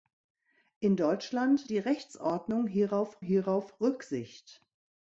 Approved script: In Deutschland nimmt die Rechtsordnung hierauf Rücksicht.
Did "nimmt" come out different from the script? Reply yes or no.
yes